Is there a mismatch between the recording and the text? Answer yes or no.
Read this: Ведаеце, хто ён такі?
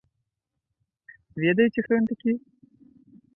no